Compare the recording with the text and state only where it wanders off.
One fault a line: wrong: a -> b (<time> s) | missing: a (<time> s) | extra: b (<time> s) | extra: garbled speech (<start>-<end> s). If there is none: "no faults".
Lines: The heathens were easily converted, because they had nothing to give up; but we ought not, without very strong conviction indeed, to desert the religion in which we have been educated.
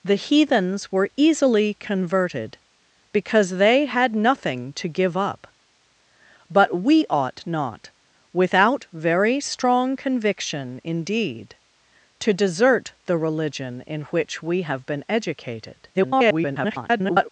extra: garbled speech (15.9-17.3 s)